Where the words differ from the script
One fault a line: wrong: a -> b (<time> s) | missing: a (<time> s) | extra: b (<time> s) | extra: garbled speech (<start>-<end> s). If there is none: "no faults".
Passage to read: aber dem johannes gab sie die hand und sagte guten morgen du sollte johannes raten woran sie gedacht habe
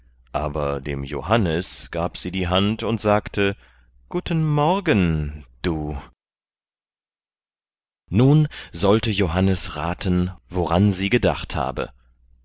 extra: nun (8.1 s)